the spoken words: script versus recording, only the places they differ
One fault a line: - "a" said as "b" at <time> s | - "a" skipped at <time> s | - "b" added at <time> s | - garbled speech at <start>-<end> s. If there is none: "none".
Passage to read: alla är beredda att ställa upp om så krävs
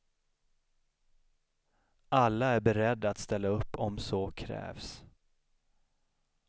none